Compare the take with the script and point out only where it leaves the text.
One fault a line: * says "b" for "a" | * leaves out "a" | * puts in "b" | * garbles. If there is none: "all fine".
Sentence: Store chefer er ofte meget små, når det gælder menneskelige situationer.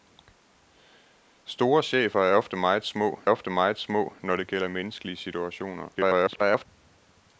* puts in "ofte meget små"
* garbles